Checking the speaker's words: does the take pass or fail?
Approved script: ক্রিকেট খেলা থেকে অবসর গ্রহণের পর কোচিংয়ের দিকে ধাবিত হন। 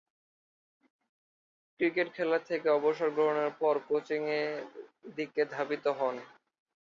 pass